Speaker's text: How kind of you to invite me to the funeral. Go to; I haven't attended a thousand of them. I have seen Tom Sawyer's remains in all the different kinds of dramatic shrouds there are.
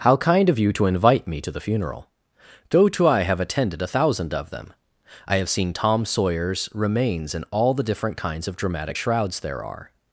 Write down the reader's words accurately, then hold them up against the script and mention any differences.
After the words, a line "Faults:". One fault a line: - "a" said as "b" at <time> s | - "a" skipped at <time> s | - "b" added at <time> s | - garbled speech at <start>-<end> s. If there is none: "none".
How kind of you to invite me to the funeral. Go to; I have attended a thousand of them. I have seen Tom Sawyer's remains in all the different kinds of dramatic shrouds there are.
Faults:
- "haven't" said as "have" at 3.2 s